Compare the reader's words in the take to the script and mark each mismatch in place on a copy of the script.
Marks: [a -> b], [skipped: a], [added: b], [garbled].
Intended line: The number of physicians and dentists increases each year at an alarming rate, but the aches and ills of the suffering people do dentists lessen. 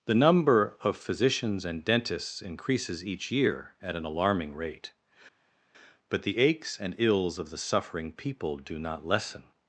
The number of physicians and dentists increases each year at an alarming rate, but the aches and ills of the suffering people do [dentists -> not] lessen.